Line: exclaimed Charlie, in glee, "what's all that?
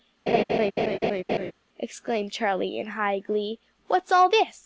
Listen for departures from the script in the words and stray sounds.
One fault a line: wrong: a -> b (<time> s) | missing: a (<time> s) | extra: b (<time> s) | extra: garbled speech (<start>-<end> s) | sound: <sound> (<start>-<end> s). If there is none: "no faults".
sound: laugh (0.3-1.5 s)
extra: high (2.9 s)
wrong: that -> this (4.3 s)